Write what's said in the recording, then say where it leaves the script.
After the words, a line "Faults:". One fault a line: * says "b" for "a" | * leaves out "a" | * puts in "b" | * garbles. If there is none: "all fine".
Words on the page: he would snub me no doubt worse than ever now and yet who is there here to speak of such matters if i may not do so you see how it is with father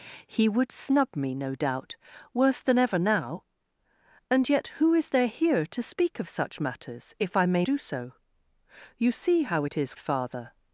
he would snub me no doubt worse than ever now and yet who is there here to speak of such matters if i may do so you see how it is father
Faults:
* leaves out "not"
* leaves out "with"